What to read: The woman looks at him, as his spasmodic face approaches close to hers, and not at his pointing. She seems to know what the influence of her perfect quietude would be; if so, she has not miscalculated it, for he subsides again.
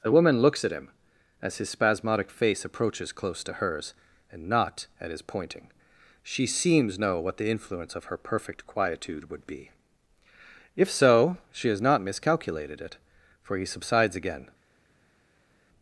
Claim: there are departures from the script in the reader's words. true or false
true